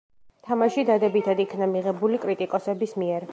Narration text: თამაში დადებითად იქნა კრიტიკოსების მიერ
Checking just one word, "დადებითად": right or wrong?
right